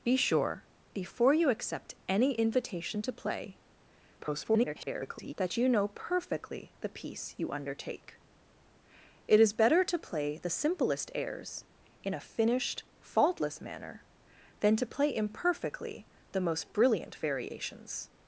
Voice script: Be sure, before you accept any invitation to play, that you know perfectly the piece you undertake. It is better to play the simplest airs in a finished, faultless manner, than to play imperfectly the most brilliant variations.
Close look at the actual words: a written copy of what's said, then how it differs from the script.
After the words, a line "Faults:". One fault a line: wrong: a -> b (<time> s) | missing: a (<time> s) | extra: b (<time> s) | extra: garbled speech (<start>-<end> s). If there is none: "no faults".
Be sure, before you accept any invitation to play, [garbled] that you know perfectly the piece you undertake. It is better to play the simplest airs in a finished, faultless manner, than to play imperfectly the most brilliant variations.
Faults:
extra: garbled speech (4.2-5.3 s)